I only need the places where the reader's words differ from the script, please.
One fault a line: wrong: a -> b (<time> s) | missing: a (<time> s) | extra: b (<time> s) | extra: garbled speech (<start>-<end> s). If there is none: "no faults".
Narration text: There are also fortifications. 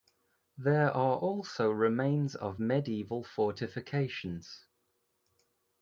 extra: remains of medieval (1.7 s)